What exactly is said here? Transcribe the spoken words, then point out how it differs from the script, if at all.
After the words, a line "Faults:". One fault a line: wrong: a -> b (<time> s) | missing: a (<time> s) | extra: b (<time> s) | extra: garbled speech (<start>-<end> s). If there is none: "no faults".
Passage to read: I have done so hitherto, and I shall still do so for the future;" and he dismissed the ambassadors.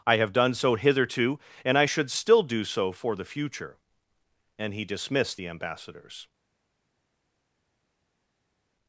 I have done so hitherto, and I should still do so for the future;" and he dismissed the ambassadors.
Faults:
wrong: shall -> should (1.8 s)